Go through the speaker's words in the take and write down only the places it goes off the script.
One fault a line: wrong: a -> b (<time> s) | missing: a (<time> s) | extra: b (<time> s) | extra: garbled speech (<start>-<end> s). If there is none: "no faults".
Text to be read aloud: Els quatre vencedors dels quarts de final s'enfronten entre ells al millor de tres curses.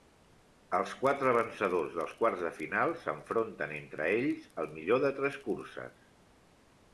no faults